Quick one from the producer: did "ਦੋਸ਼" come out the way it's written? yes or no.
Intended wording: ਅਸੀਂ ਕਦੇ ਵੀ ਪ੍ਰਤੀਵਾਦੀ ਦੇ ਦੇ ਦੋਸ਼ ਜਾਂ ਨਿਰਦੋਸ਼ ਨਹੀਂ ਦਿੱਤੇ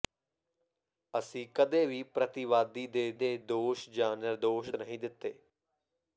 yes